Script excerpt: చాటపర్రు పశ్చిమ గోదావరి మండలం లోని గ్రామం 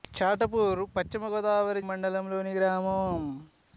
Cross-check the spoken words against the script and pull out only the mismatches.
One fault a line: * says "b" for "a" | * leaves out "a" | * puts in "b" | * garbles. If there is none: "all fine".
all fine